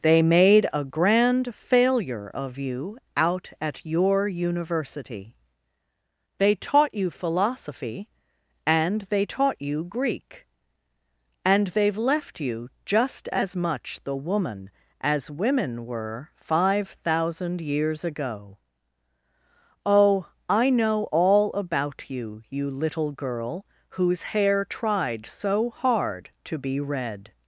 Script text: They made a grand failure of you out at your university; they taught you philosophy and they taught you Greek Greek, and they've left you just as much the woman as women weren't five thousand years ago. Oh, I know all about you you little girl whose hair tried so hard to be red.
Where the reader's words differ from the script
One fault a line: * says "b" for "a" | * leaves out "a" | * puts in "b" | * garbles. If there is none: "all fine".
* leaves out "Greek"
* says "were" for "weren't"